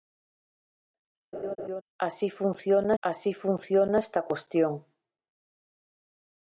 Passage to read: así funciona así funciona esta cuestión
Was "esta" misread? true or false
false